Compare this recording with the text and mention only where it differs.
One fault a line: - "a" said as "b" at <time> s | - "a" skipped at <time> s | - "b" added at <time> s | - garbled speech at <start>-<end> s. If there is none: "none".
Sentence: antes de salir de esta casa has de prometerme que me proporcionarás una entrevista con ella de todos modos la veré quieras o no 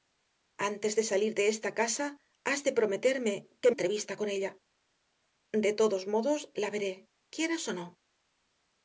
- "me proporcionarás una" skipped at 3.7 s